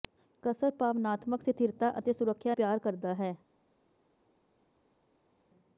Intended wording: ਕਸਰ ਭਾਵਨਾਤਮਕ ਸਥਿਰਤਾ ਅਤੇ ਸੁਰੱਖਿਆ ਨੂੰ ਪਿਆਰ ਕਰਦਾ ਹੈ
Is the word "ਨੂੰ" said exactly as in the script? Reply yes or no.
no